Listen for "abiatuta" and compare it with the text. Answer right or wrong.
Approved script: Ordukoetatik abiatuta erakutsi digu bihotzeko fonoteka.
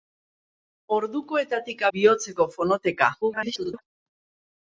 wrong